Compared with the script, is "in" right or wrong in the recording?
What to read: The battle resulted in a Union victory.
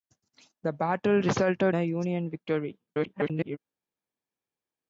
wrong